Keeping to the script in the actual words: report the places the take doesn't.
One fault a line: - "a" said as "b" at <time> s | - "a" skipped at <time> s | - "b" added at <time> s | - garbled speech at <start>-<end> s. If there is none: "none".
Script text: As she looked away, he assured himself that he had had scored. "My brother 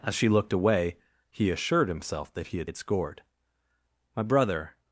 none